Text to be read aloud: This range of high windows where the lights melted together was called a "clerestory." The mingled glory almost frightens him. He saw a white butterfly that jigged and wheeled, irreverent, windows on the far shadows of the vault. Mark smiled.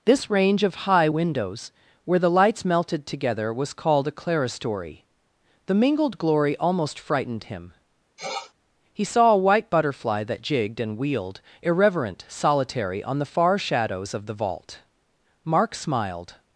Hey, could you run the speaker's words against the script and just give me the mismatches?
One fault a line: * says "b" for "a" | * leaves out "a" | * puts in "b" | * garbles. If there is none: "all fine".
* says "frightened" for "frightens"
* says "solitary" for "windows"